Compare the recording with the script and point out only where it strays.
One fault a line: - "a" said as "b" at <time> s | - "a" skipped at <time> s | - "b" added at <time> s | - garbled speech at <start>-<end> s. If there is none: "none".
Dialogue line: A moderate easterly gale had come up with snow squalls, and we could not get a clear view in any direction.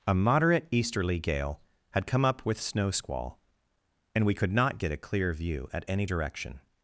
- "squalls" said as "squall" at 2.9 s
- "in" said as "at" at 5.7 s